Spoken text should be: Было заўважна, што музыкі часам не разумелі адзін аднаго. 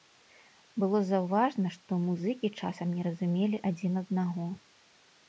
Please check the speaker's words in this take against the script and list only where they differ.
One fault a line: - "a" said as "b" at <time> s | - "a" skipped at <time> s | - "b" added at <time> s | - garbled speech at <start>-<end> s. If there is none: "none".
none